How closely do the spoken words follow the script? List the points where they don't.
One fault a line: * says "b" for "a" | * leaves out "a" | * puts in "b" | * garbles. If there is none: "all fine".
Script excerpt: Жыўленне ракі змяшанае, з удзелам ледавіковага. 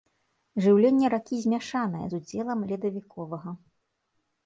all fine